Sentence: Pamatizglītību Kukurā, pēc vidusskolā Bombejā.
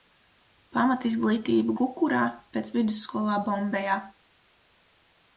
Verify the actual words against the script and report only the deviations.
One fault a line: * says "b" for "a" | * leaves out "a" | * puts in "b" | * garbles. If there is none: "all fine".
all fine